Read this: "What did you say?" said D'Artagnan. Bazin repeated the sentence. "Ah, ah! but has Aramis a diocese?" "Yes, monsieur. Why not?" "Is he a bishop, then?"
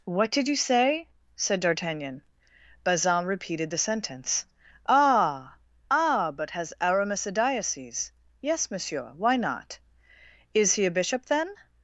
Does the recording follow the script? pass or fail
pass